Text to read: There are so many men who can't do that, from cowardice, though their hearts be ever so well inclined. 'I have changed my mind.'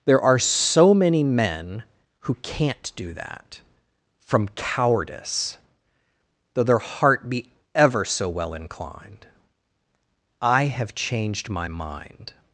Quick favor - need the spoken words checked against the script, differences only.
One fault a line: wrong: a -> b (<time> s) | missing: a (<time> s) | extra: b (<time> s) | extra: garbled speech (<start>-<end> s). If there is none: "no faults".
wrong: hearts -> heart (6.8 s)